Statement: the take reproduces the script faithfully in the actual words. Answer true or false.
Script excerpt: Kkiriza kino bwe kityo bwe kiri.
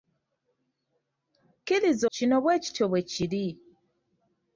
true